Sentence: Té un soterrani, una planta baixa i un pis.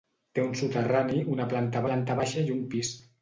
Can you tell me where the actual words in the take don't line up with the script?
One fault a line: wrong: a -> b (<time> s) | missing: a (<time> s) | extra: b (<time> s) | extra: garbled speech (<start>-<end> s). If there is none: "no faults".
extra: planta (1.9 s)